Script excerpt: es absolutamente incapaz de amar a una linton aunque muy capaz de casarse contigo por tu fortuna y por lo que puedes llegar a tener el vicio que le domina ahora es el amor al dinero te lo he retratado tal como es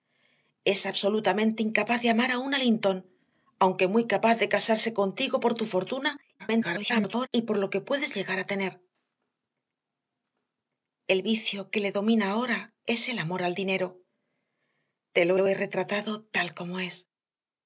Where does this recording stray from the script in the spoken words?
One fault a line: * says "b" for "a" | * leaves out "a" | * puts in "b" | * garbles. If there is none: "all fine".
* garbles
* puts in "lo"